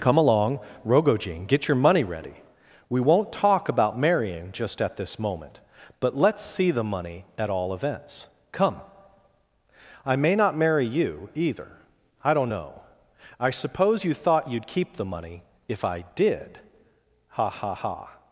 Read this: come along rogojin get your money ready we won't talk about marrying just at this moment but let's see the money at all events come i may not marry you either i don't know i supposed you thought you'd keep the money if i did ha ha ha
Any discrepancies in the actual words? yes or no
yes